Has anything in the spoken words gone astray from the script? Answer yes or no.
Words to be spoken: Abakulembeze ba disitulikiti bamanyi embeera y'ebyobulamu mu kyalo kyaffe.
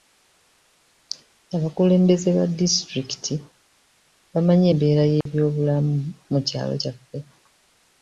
no